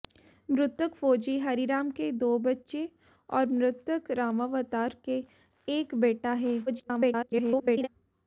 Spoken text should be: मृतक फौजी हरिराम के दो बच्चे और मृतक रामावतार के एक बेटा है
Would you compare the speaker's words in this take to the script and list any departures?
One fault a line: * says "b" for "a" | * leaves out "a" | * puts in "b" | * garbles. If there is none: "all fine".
* garbles